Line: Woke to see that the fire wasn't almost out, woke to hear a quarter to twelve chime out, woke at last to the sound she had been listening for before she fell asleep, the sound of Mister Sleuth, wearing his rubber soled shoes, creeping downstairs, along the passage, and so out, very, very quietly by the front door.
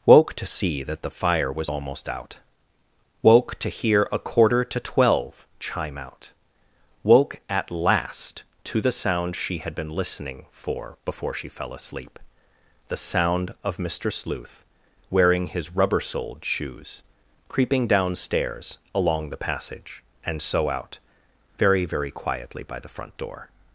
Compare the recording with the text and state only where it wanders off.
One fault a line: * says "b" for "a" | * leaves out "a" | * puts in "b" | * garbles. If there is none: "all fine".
* says "was" for "wasn't"